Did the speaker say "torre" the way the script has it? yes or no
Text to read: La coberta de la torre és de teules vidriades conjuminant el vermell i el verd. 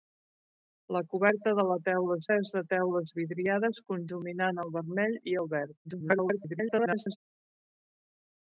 no